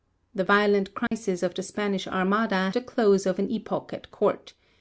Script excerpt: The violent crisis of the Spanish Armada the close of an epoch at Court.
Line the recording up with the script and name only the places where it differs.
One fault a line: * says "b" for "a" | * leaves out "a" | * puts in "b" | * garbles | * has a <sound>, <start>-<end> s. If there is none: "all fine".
* has a dropout, 1.1-1.1 s